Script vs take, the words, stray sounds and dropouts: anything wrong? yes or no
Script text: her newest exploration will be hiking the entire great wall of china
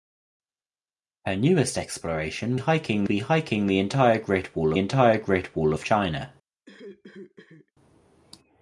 yes